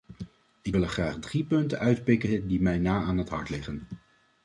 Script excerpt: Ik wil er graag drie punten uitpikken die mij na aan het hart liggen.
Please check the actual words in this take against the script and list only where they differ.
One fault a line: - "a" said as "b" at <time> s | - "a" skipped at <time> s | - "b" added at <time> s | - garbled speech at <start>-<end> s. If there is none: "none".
none